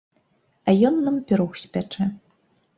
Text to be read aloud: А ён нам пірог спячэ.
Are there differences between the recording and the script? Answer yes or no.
no